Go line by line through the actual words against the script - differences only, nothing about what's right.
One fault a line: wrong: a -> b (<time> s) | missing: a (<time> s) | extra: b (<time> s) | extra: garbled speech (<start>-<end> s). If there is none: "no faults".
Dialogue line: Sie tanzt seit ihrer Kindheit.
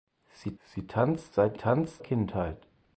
extra: sie (0.6 s)
wrong: ihrer -> tanzt (1.5 s)